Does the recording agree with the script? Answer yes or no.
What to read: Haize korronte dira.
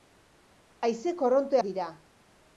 yes